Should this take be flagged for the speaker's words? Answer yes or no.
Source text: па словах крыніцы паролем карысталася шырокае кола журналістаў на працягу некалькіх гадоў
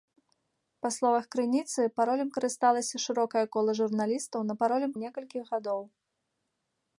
yes